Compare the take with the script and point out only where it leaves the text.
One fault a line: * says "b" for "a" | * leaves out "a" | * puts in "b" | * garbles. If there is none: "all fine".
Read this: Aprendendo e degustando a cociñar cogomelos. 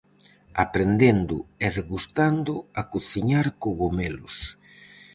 all fine